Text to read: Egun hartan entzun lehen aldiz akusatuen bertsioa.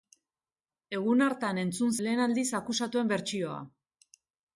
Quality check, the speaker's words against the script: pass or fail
pass